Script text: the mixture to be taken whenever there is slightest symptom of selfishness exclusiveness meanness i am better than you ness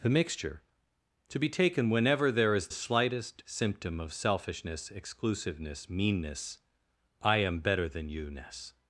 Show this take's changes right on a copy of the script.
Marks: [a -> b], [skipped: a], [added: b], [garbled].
the mixture to be taken whenever there is slightest symptom of selfishness exclusiveness meanness i am better than you ness